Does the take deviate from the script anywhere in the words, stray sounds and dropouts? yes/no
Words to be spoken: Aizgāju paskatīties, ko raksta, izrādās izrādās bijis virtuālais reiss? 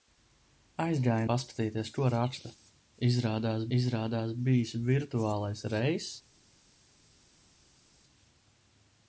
no